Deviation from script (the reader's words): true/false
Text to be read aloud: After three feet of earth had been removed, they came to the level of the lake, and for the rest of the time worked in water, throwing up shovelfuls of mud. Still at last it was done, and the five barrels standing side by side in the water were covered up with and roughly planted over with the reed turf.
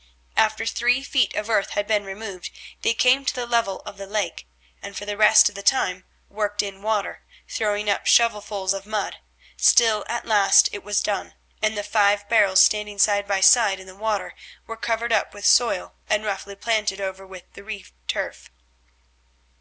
true